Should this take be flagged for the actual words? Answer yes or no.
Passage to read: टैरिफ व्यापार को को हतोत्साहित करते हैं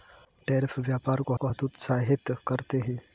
no